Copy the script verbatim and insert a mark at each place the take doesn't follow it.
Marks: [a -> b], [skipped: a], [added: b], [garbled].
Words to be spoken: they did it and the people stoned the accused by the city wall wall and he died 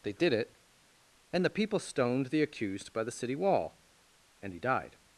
they did it and the people stoned the accused by the city wall [skipped: wall] and he died